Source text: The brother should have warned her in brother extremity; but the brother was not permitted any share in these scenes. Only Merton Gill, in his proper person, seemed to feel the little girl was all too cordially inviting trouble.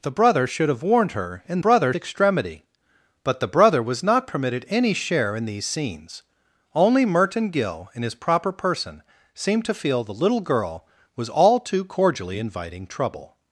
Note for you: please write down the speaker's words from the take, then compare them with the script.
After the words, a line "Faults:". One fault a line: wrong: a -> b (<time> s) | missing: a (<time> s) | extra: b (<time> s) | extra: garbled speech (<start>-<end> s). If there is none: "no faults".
The brother should have warned her in brother extremity; but the brother was not permitted any share in these scenes. Only Merton Gill, in his proper person, seemed to feel the little girl was all too cordially inviting trouble.
Faults:
no faults